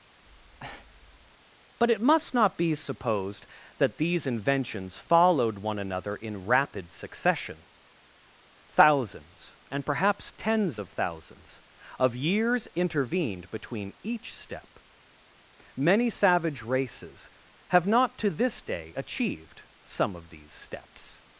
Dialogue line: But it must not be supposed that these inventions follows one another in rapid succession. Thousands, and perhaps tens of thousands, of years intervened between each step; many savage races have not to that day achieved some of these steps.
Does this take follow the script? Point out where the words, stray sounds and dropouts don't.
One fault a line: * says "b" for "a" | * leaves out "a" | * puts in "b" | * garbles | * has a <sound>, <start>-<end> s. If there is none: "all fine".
* has a breath, 0.2-1.4 s
* says "followed" for "follows"
* says "this" for "that"